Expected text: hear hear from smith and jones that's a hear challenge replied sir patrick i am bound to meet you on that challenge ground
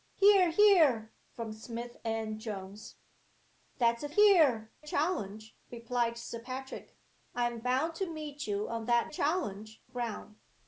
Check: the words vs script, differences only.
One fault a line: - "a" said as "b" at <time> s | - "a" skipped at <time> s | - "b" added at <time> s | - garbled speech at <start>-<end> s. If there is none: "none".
none